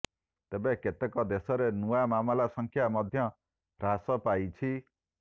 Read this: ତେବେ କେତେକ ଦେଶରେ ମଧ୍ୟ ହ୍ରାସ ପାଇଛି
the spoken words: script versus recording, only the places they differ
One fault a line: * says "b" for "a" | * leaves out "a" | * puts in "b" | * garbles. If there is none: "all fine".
* puts in "ନୂଆ ମାମଲା ସଂଖ୍ୟା"